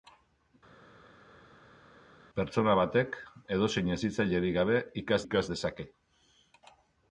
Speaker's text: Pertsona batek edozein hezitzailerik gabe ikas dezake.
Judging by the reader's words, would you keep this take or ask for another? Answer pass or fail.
fail